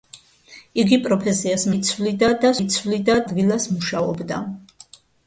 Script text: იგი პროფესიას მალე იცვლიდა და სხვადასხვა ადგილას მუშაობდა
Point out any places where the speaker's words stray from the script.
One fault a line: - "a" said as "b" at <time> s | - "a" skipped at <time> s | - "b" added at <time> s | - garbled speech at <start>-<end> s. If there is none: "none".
- "მალე" skipped at 1.6 s
- "სხვადასხვა" said as "იცვლიდა" at 2.6 s